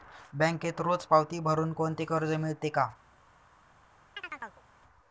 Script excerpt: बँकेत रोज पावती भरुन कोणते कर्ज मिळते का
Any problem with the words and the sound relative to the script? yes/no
yes